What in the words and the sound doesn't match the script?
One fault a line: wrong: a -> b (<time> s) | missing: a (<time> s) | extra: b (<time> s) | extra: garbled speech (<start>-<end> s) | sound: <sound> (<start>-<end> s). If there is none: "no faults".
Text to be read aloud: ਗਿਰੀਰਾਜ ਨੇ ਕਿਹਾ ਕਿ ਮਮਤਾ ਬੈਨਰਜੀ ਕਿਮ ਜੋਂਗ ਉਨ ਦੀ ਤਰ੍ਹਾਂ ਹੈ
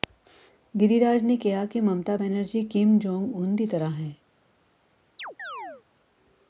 sound: chirp (5.2-5.8 s)